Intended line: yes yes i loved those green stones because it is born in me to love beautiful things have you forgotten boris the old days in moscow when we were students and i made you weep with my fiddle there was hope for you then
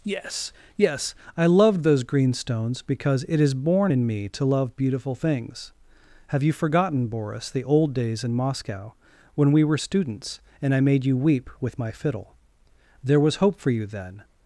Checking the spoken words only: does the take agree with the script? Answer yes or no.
yes